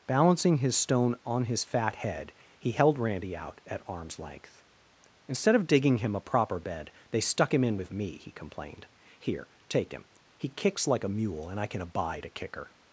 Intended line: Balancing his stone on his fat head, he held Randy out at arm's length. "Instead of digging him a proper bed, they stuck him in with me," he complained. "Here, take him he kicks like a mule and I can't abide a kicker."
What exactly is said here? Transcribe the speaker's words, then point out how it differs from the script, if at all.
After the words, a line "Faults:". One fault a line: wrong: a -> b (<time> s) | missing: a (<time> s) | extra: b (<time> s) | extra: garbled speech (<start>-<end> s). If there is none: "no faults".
Balancing his stone on his fat head, he held Randy out at arm's length. "Instead of digging him a proper bed, they stuck him in with me," he complained. "Here, take him he kicks like a mule and I can abide a kicker."
Faults:
wrong: can't -> can (11.7 s)